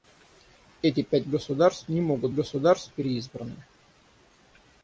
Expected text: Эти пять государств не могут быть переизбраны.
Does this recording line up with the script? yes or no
no